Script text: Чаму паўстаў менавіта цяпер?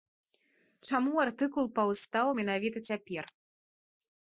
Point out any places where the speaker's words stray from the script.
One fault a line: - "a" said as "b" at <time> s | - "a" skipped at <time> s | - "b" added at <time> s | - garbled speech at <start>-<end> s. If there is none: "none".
- "артыкул" added at 1.2 s